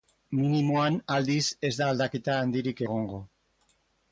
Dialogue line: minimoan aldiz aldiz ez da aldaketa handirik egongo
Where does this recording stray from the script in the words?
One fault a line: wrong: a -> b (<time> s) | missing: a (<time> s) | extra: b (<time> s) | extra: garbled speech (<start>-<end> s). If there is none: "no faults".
missing: aldiz (1.4 s)